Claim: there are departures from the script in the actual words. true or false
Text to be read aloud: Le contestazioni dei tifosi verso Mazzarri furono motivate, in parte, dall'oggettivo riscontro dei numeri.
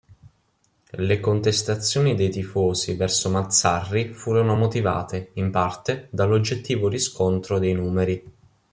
false